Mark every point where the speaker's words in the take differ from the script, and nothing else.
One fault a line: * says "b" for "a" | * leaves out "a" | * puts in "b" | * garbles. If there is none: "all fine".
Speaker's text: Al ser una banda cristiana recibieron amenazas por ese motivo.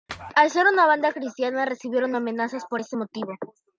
all fine